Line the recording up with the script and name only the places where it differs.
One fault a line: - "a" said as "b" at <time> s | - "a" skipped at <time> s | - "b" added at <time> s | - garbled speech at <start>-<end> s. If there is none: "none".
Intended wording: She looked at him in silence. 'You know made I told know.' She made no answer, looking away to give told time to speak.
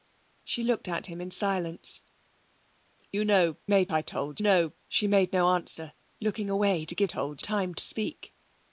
none